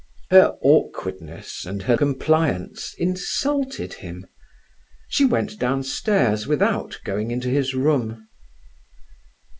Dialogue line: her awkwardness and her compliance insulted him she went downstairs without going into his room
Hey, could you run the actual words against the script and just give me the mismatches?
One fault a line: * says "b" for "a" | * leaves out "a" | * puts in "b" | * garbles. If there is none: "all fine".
all fine